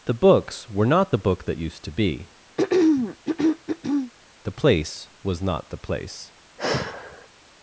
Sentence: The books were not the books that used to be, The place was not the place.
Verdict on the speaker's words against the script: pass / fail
fail